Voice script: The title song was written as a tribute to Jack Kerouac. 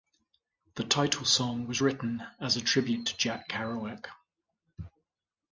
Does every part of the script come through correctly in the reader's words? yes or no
yes